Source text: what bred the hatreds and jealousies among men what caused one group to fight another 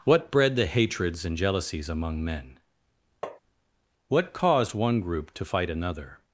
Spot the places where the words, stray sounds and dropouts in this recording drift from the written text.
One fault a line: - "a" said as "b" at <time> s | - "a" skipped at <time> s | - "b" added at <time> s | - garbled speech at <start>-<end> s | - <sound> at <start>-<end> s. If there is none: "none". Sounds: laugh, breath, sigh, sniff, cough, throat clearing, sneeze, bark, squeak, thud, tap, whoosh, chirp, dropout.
- tap at 3.2-3.4 s